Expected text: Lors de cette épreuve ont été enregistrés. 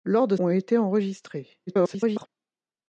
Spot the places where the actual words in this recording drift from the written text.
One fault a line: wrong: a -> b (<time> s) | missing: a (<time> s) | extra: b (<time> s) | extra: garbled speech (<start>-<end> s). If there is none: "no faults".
missing: cette épreuve (0.3 s)
extra: garbled speech (1.7-2.3 s)